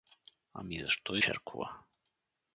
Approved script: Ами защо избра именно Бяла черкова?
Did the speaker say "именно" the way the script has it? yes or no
no